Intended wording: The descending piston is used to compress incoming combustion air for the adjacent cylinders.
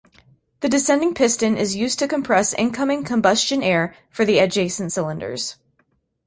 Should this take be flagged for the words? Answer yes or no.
no